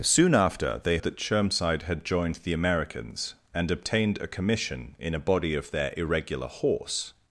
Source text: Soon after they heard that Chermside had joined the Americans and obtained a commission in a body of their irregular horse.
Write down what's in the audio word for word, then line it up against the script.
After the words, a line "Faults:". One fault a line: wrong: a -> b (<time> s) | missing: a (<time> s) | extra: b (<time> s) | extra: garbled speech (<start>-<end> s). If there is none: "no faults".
Soon after they that Chermside had joined the Americans and obtained a commission in a body of their irregular horse.
Faults:
missing: heard (1.0 s)